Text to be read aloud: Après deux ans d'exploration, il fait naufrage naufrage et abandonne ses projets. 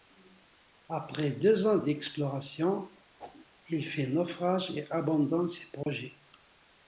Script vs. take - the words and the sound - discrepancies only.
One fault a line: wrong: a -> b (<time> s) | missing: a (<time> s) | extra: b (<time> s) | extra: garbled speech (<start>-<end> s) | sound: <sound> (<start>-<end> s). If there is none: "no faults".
sound: whoosh (3.2-3.5 s)
missing: naufrage (4.7 s)
sound: dropout (5.8-5.9 s)